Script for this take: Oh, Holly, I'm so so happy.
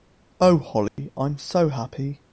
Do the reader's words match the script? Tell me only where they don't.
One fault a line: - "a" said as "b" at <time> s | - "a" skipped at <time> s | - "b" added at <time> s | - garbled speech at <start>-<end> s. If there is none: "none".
- "so" skipped at 1.7 s